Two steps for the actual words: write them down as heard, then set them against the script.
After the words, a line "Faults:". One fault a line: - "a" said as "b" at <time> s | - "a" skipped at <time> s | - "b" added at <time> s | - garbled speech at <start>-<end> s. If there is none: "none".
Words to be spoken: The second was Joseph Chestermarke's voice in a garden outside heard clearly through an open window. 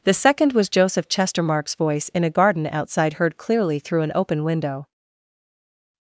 The second was Joseph Chestermarke's voice in a garden outside heard clearly through an open window.
Faults:
none